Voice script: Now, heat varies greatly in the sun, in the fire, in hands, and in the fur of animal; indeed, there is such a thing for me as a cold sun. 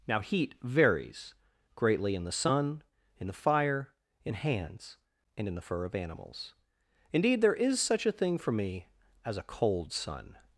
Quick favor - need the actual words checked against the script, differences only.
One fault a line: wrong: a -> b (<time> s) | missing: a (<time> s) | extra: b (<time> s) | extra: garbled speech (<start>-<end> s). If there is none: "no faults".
wrong: animal -> animals (5.9 s)